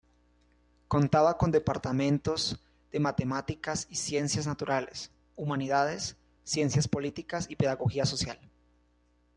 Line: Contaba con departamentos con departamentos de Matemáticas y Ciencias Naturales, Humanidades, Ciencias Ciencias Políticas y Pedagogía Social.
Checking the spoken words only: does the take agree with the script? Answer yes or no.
no